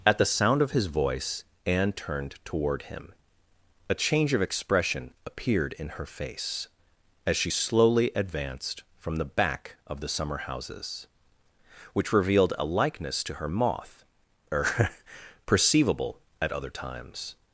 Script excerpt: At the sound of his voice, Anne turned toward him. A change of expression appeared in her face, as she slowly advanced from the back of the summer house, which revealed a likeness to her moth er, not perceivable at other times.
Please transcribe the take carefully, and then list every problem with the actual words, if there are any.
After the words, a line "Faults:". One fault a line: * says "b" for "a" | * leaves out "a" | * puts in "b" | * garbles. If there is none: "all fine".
At the sound of his voice, Anne turned toward him. A change of expression appeared in her face, as she slowly advanced from the back of the summer houses, which revealed a likeness to her moth er, perceivable at other times.
Faults:
* says "houses" for "house"
* leaves out "not"